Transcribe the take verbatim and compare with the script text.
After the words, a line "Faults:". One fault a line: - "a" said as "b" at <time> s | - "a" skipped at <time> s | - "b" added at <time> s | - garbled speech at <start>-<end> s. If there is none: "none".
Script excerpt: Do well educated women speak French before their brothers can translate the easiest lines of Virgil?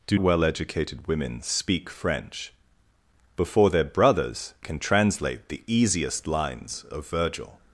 Do well educated women speak French before their brothers can translate the easiest lines of Virgil?
Faults:
none